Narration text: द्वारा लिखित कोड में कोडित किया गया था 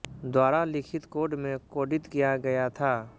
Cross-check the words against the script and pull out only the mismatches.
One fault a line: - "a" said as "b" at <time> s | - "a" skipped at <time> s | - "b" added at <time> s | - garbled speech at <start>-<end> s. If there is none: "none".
none